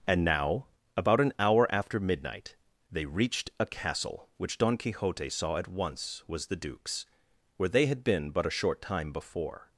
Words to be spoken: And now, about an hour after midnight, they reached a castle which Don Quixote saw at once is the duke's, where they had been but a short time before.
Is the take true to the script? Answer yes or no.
no